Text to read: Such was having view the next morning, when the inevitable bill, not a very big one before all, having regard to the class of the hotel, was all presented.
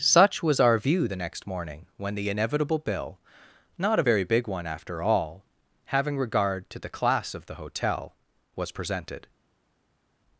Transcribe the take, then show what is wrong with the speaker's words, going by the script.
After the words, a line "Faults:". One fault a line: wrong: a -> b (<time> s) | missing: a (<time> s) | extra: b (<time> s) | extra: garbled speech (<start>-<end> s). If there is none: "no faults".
Such was our view the next morning, when the inevitable bill, not a very big one after all, having regard to the class of the hotel, was presented.
Faults:
wrong: having -> our (0.6 s)
wrong: before -> after (4.7 s)
missing: all (8.7 s)